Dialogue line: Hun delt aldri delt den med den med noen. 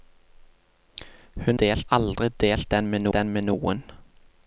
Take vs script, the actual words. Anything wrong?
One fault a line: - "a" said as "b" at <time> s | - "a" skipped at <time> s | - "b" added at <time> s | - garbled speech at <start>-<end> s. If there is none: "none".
none